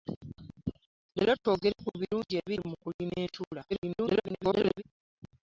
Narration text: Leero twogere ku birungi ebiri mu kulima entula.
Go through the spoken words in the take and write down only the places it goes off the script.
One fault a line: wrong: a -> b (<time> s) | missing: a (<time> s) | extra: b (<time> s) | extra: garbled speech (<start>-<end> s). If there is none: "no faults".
extra: garbled speech (3.7-4.8 s)